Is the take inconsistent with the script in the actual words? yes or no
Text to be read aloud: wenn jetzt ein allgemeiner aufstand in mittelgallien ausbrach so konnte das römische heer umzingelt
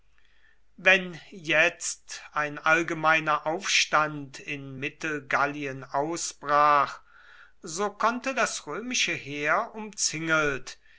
no